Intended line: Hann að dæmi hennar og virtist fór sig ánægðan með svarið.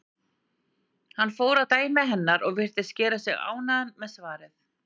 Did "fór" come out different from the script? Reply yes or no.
yes